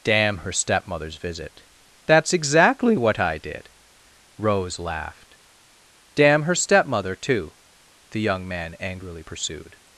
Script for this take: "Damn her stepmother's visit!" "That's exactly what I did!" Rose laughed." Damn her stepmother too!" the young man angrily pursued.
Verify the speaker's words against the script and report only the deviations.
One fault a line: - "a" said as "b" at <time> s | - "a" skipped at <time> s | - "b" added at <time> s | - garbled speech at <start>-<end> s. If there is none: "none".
none